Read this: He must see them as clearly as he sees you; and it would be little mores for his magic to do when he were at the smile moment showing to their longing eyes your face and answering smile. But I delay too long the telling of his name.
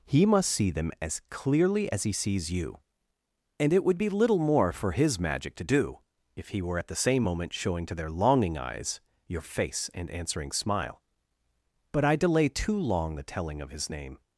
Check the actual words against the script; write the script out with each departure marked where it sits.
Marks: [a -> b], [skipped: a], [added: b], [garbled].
He must see them as clearly as he sees you; and it would be little [mores -> more] for his magic to do [when -> if] he were at the [smile -> same] moment showing to their longing eyes your face and answering smile. But I delay too long the telling of his name.